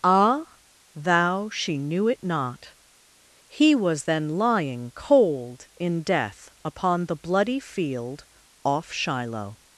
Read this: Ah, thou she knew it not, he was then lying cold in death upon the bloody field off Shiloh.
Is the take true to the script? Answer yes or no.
yes